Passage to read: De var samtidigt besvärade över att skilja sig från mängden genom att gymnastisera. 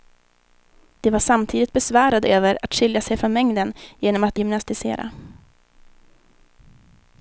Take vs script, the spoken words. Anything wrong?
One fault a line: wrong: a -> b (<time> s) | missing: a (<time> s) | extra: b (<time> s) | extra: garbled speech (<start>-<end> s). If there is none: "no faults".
no faults